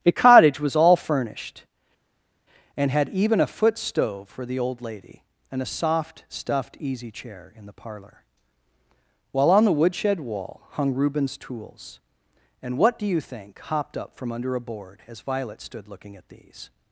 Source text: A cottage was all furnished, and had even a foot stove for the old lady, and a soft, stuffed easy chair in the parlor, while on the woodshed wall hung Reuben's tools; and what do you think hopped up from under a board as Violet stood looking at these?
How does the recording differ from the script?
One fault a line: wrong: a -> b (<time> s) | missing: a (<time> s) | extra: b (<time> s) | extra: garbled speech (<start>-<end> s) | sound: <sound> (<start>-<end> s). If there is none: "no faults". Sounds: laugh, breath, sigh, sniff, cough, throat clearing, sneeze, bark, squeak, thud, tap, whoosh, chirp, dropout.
no faults